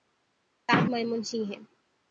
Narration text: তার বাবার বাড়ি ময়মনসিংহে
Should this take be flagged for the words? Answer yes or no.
yes